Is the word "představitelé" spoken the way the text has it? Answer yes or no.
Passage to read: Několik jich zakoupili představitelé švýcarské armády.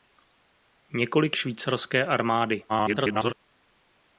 no